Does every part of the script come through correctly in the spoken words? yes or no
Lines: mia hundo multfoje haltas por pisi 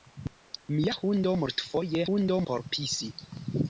no